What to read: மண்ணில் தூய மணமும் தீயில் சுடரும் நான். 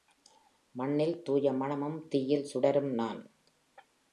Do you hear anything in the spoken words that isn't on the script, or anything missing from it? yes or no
no